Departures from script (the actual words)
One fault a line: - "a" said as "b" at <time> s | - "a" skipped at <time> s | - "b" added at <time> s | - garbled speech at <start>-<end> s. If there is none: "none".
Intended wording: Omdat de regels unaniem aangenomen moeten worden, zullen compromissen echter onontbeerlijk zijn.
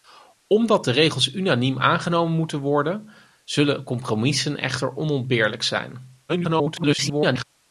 - garbled speech at 6.3-7.4 s